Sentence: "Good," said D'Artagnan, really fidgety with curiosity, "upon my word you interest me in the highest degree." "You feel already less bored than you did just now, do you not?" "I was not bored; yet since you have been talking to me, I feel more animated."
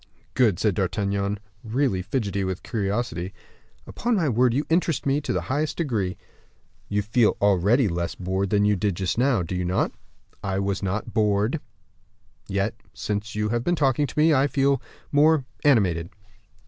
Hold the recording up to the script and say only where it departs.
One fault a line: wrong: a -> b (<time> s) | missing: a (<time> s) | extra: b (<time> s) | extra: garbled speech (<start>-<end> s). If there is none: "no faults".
no faults